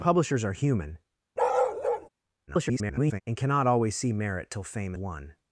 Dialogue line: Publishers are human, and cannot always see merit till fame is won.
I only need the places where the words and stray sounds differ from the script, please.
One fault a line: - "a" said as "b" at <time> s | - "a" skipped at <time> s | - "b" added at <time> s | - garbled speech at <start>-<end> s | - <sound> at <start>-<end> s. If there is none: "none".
- bark at 1.4-2.1 s
- garbled speech at 2.5-3.2 s
- "is" skipped at 4.9 s